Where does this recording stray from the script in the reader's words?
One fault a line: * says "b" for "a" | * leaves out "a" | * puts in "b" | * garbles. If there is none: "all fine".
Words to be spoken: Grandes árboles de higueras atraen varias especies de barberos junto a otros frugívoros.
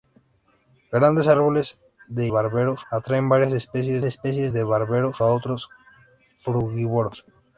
* says "barberos" for "higueras"
* puts in "especies"
* leaves out "junto"